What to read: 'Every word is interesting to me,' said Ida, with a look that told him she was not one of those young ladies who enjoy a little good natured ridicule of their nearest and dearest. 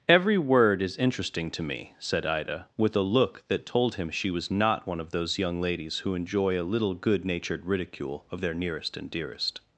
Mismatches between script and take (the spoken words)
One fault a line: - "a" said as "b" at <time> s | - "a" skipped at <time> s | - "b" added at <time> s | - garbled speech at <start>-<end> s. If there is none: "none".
none